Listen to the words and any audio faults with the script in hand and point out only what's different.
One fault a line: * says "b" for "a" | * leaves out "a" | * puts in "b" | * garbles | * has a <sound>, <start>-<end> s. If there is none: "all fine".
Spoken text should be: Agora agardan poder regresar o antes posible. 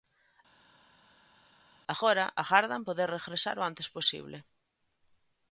all fine